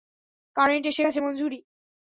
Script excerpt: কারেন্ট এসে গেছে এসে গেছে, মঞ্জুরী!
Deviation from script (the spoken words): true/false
true